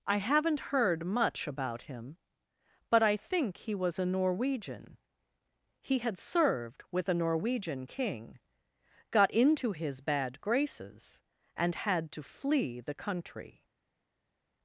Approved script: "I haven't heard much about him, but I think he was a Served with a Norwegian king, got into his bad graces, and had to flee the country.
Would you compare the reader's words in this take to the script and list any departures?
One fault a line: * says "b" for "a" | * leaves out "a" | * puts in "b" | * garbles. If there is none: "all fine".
* puts in "Norwegian He had"